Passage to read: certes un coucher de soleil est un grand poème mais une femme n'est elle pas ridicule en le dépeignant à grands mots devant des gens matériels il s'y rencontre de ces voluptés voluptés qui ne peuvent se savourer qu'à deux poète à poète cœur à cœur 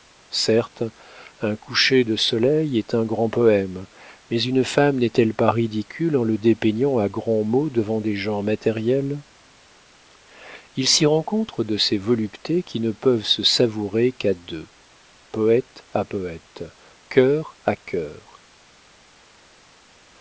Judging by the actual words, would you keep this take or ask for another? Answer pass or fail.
fail